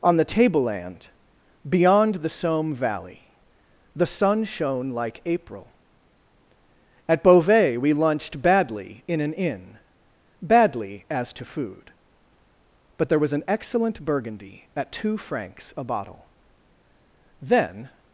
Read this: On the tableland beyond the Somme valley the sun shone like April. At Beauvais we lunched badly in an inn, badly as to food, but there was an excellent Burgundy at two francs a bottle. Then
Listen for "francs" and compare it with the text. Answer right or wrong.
right